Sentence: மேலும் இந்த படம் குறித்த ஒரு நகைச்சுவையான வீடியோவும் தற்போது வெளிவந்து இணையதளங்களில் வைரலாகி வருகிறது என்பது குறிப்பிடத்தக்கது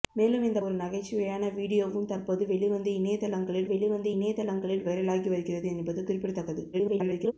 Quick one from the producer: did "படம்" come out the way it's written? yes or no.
no